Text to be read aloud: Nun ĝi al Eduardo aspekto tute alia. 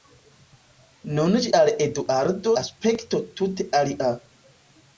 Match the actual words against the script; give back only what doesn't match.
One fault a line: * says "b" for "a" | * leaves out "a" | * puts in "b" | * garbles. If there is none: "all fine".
all fine